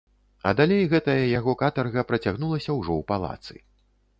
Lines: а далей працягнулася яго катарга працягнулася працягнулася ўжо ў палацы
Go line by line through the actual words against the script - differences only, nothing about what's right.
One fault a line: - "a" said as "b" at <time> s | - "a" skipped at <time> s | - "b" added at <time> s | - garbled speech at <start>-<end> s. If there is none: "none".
- "працягнулася" said as "гэтая" at 0.9 s
- "працягнулася" skipped at 2.7 s